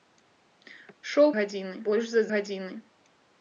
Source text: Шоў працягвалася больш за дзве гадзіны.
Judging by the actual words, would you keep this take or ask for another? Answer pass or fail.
fail